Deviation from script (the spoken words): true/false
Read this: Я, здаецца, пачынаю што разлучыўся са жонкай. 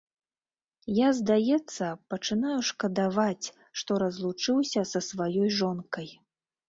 true